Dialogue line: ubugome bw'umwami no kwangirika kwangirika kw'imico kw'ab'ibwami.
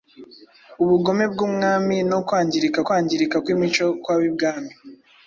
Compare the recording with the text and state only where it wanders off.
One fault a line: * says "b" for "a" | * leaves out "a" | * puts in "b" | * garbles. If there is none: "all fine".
all fine